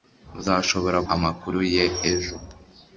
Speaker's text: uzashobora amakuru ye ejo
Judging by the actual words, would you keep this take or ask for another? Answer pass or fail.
pass